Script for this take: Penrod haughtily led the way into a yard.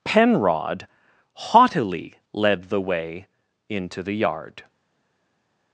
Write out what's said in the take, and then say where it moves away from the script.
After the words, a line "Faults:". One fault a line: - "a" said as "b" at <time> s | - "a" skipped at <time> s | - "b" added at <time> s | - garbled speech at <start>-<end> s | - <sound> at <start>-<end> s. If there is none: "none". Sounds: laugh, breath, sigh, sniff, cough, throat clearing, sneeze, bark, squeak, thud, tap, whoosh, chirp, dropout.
Penrod haughtily led the way into the yard.
Faults:
- "a" said as "the" at 4.0 s